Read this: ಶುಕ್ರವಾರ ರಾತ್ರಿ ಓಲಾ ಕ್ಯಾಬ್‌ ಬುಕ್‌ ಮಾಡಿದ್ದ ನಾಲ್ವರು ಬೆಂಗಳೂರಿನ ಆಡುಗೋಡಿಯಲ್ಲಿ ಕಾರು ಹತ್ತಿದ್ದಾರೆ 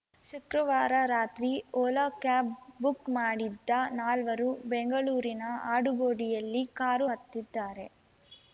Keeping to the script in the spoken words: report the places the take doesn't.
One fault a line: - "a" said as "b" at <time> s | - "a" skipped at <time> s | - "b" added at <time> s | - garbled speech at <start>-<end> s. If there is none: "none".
none